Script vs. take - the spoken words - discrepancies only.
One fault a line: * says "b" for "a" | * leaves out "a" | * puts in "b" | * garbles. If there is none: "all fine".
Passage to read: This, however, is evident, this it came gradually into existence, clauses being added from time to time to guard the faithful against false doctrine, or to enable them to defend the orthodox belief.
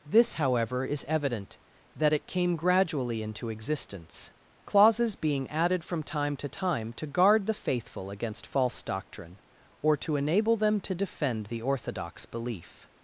* says "that" for "this"